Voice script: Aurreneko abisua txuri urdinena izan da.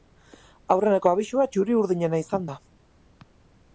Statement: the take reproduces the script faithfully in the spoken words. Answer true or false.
true